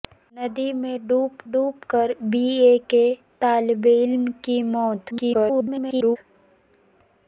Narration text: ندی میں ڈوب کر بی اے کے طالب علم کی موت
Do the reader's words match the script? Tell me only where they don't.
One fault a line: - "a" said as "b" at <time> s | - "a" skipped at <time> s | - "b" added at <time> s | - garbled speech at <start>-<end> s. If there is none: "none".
- "ڈوب" added at 1.5 s
- garbled speech at 5.1-6.2 s